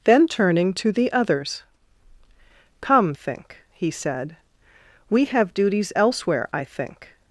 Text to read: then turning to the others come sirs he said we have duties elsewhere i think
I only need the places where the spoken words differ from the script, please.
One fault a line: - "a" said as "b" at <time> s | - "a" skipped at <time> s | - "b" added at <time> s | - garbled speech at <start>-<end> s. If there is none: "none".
- "sirs" said as "think" at 3.1 s